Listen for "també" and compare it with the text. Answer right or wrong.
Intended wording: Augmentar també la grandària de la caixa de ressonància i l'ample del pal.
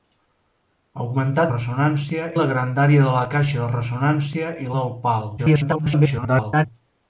wrong